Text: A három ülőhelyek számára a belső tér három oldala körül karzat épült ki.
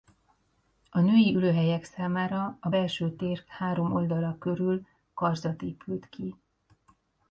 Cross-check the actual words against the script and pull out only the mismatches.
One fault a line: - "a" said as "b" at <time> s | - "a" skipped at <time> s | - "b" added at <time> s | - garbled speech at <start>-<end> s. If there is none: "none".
- "három" said as "női" at 1.0 s